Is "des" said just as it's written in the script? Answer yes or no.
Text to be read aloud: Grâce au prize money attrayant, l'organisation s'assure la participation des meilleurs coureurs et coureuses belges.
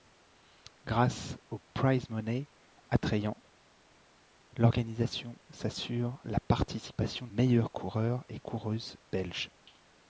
no